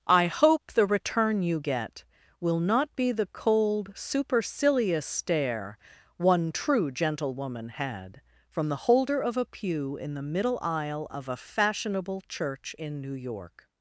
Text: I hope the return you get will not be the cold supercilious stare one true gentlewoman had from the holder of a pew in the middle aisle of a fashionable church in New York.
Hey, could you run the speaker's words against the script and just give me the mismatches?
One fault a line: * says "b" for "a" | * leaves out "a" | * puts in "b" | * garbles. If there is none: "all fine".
all fine